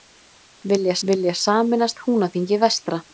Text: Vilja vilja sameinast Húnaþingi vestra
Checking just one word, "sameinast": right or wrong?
right